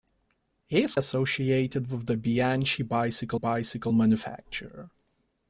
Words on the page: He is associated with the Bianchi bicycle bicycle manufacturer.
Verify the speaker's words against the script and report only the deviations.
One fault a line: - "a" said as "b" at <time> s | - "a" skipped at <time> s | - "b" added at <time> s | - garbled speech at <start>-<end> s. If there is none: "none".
none